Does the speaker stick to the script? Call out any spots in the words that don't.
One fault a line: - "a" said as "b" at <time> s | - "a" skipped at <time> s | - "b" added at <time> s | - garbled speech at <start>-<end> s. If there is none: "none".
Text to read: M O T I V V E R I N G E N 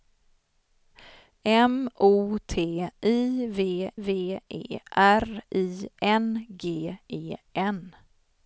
none